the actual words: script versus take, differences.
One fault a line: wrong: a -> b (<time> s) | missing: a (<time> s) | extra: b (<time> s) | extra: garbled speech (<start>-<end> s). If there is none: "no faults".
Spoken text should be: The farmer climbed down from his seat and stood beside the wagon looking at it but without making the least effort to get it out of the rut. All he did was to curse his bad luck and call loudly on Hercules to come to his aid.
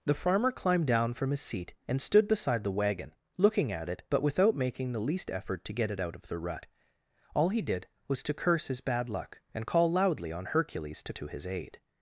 missing: come (11.1 s)